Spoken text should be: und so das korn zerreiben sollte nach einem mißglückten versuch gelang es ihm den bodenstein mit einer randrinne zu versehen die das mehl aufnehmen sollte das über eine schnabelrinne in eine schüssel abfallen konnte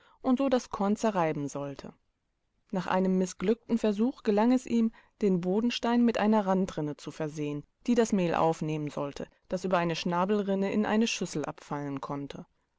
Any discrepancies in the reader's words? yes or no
no